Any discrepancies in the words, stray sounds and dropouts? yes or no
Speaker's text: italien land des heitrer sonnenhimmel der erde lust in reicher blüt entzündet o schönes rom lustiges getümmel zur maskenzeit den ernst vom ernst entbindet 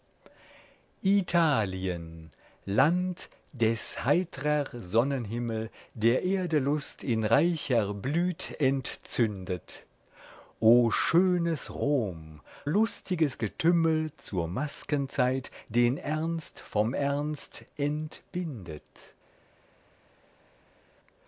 no